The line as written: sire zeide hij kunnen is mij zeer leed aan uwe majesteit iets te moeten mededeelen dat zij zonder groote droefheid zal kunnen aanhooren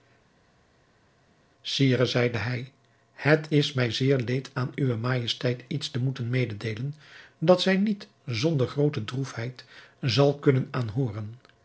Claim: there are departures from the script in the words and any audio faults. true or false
true